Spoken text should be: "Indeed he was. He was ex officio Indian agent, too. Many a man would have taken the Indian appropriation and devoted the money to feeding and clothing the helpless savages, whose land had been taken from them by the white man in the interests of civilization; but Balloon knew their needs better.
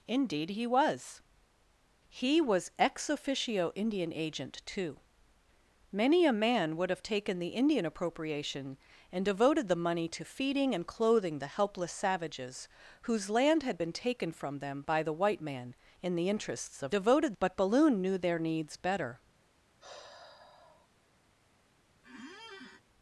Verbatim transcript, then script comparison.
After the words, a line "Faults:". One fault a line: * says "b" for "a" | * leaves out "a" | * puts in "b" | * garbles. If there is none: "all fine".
"Indeed he was. He was ex officio Indian agent, too. Many a man would have taken the Indian appropriation and devoted the money to feeding and clothing the helpless savages, whose land had been taken from them by the white man in the interests of devoted; but Balloon knew their needs better.
Faults:
* says "devoted" for "civilization"